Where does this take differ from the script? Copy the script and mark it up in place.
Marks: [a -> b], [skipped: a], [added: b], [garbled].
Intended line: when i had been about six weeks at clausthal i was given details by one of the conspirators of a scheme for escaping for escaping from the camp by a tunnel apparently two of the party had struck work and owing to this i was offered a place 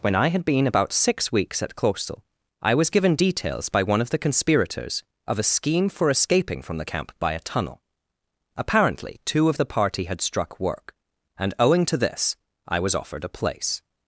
when i had been about six weeks at clausthal i was given details by one of the conspirators of a scheme for escaping [skipped: for escaping] from the camp by a tunnel apparently two of the party had struck work and owing to this i was offered a place